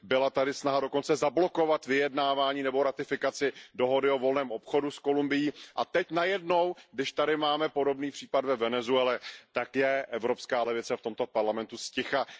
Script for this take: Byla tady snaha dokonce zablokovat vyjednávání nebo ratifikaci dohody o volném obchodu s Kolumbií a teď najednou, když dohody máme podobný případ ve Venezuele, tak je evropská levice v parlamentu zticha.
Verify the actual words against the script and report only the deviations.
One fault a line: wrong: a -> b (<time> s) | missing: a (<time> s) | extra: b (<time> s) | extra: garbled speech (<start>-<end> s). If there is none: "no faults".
wrong: dohody -> tady (7.1 s)
extra: tomto (11.0 s)